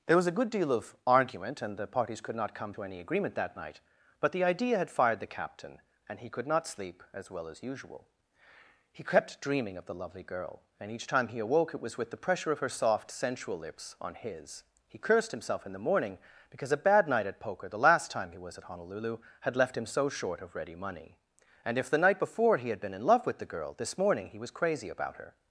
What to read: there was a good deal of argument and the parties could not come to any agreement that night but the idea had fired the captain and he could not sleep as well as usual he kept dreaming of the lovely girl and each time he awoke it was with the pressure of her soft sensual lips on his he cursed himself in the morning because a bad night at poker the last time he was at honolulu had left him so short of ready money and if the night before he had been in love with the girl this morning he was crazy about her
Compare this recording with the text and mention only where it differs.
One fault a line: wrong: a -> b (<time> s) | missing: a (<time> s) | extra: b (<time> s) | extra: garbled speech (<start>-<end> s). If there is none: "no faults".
no faults